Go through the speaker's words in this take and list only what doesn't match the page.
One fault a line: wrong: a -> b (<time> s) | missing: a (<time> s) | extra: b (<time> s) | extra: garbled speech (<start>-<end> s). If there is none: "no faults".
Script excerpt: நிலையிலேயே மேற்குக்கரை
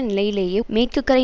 no faults